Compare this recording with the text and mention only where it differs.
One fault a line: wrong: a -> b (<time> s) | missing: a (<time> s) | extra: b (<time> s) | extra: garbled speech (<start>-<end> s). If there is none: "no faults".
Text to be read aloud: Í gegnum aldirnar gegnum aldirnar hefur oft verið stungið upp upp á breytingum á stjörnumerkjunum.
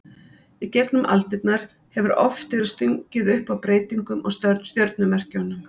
missing: gegnum aldirnar (1.6 s)
missing: upp (3.5 s)